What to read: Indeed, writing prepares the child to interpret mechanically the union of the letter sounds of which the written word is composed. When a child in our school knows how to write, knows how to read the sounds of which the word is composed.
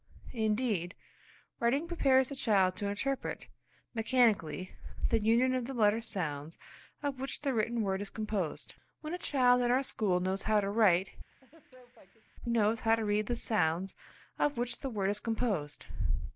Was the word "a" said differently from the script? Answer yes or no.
no